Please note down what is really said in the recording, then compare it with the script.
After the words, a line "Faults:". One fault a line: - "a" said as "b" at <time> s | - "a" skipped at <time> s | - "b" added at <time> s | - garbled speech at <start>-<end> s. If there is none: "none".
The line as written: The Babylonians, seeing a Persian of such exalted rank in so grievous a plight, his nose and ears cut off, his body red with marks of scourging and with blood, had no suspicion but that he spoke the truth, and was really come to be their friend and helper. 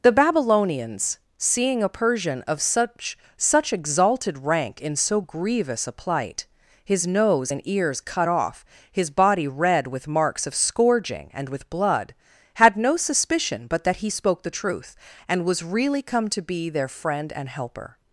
The Babylonians, seeing a Persian of such such exalted rank in so grievous a plight, his nose and ears cut off, his body red with marks of scourging and with blood, had no suspicion but that he spoke the truth, and was really come to be their friend and helper.
Faults:
- "such" added at 3.4 s